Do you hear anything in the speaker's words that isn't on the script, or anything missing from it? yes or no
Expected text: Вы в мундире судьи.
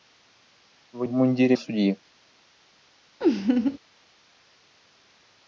no